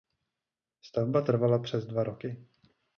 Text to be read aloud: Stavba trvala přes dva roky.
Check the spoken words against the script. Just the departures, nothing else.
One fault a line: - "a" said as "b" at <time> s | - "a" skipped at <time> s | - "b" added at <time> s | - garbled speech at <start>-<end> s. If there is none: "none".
none